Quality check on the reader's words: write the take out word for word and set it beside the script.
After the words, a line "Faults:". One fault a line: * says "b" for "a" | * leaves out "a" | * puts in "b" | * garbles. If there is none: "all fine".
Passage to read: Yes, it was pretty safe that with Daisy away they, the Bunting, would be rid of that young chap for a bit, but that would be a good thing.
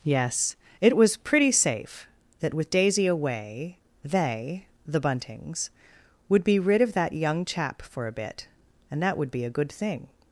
Yes, it was pretty safe that with Daisy away they, the Buntings, would be rid of that young chap for a bit, and that would be a good thing.
Faults:
* says "Buntings" for "Bunting"
* says "and" for "but"